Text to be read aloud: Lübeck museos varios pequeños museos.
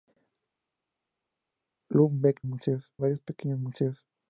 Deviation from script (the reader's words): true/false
false